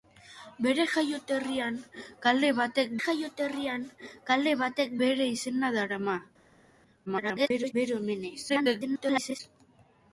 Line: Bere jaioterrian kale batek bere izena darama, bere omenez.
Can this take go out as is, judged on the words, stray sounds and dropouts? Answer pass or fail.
fail